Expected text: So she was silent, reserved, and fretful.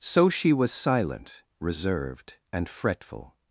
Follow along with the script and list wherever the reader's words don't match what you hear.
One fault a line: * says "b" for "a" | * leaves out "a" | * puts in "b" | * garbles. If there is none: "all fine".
all fine